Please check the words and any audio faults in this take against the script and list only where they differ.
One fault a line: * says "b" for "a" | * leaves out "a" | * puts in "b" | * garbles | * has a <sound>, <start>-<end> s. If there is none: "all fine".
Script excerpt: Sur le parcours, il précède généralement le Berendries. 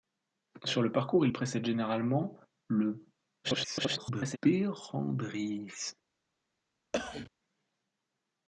* garbles
* has a cough, 6.9-7.3 s